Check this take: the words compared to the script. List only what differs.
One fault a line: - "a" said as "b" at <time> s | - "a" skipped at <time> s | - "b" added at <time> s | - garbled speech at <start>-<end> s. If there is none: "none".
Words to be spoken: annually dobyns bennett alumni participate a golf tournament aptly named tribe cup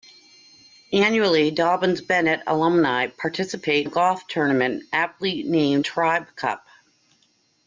none